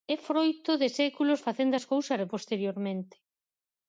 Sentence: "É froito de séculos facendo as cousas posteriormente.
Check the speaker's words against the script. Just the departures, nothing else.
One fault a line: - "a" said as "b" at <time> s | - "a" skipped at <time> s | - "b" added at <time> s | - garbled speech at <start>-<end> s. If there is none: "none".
none